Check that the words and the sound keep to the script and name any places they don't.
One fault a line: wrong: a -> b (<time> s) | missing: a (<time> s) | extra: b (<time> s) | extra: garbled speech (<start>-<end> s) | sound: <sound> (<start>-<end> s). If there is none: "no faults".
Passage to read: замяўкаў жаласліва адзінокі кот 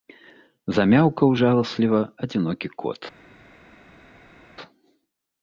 no faults